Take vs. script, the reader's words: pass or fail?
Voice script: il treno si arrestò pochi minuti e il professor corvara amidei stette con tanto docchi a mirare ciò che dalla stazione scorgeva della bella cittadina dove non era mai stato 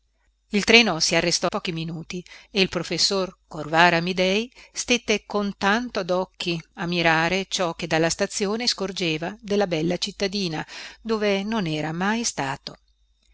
pass